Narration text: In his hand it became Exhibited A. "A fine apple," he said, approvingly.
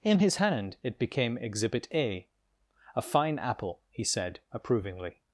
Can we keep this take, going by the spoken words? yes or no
no